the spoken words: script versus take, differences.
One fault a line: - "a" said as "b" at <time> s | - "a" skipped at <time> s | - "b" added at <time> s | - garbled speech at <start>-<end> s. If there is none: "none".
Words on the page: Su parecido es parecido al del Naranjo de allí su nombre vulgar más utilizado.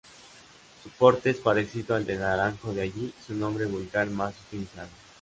- "parecido" said as "porte" at 0.9 s